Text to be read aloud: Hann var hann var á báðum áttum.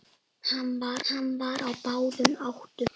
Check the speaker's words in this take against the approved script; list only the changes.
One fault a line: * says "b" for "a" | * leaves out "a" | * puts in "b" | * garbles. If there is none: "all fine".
all fine